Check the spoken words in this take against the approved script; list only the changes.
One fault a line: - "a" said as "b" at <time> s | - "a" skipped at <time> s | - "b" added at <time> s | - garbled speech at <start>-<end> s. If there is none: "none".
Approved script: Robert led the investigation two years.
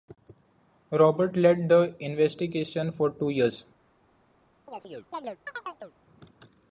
- "for" added at 2.9 s